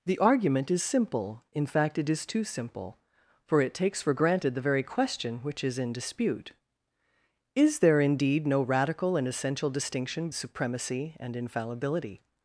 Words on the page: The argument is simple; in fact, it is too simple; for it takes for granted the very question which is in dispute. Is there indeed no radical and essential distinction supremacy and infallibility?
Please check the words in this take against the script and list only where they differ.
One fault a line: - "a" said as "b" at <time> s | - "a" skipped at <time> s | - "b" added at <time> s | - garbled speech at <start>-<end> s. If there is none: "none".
none